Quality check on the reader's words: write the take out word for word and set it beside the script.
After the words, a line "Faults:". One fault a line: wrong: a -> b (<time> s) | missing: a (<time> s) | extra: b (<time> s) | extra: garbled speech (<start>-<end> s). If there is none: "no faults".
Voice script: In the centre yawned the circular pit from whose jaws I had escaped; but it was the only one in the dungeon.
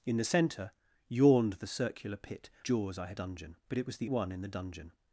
In the centre yawned the circular pit jaws I had dungeon; but it was the one in the dungeon.
Faults:
missing: from whose (2.5 s)
wrong: escaped -> dungeon (3.1 s)
missing: only (4.1 s)